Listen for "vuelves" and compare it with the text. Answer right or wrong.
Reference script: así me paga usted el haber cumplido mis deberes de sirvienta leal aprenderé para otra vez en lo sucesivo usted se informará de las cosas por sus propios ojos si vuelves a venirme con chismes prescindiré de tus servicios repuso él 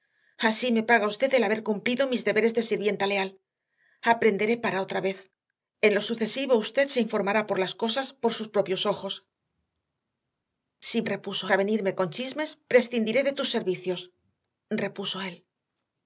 wrong